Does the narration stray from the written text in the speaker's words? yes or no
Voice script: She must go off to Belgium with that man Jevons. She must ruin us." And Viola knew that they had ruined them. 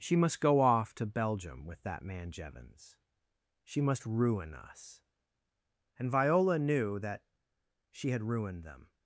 yes